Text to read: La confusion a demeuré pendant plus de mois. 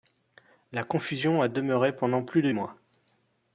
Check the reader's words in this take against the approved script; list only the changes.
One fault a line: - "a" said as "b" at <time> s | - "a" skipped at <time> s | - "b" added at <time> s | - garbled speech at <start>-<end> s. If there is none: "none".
none